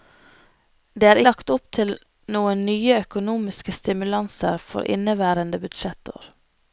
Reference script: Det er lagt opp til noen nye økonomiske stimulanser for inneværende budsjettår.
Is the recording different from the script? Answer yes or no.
no